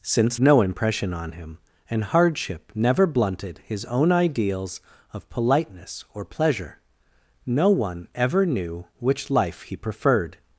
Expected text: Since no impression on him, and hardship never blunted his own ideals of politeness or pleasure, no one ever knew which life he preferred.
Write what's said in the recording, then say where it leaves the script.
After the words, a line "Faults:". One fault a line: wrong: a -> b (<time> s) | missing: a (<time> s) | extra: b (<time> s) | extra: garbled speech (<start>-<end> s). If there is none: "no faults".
Since no impression on him, and hardship never blunted his own ideals of politeness or pleasure, no one ever knew which life he preferred.
Faults:
no faults